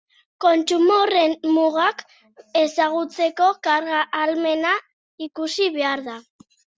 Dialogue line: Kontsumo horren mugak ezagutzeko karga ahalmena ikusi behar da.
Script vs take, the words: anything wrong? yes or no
no